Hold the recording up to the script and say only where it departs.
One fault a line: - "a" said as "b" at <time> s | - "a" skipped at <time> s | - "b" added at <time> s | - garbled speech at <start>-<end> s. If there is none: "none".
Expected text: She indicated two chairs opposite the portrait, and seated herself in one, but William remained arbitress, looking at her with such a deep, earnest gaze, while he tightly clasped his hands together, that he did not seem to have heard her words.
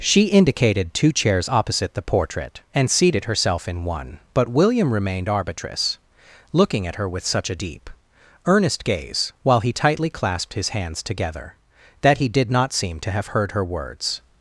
none